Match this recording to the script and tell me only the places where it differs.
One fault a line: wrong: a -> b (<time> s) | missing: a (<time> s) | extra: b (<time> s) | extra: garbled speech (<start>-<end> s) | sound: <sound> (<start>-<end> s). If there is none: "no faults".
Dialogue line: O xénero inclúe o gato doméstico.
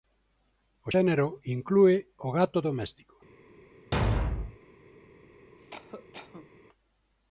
sound: thud (3.9-4.6 s)
sound: cough (5.6-6.5 s)